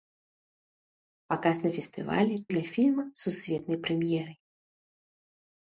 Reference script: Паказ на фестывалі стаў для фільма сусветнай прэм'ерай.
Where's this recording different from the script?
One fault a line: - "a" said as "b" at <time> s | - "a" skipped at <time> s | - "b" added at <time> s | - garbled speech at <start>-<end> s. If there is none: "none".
- "стаў" skipped at 2.4 s